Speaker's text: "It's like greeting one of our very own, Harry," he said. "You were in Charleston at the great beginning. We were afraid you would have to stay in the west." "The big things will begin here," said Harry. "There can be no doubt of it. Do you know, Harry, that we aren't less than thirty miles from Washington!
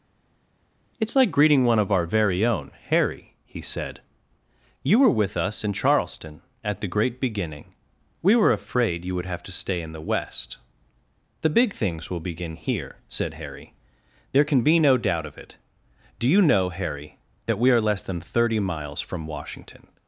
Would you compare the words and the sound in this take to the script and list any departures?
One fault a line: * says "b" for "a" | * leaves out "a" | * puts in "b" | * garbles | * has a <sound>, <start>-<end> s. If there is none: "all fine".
* puts in "with us"
* says "are" for "aren't"